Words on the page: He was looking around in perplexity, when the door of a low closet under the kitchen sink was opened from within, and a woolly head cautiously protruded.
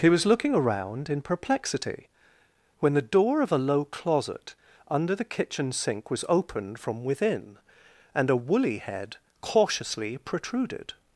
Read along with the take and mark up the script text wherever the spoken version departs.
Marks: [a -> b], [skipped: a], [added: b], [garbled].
He was looking around in perplexity, when the door of a low closet under the kitchen sink was opened from within, and a woolly head cautiously protruded.